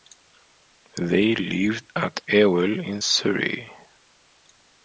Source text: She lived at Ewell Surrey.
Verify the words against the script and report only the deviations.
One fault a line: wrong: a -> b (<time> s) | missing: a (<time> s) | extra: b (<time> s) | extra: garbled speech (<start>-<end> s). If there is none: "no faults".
wrong: She -> They (1.0 s)
extra: in (2.8 s)